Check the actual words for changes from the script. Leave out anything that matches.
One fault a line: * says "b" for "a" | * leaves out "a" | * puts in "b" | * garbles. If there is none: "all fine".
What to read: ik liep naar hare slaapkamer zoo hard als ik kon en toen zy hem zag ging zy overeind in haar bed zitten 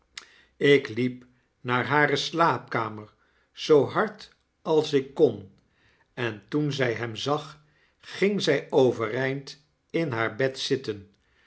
all fine